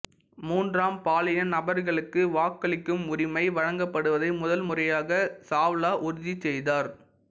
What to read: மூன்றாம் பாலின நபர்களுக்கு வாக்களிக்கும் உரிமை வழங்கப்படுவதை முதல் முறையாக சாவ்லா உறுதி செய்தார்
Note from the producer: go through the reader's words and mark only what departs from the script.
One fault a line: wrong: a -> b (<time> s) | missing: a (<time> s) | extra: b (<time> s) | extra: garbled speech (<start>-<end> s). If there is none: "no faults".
no faults